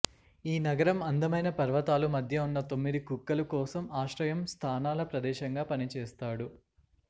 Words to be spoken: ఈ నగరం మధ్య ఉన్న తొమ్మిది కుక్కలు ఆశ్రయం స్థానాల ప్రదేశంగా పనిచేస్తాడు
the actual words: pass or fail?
fail